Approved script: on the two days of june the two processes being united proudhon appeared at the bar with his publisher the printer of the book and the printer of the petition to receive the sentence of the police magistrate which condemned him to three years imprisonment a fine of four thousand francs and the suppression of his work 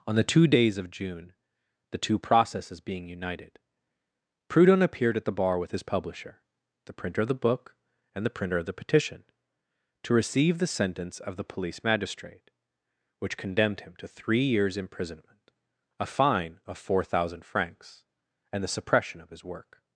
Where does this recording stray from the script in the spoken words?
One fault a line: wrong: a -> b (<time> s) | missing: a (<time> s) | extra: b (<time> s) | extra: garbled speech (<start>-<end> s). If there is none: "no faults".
no faults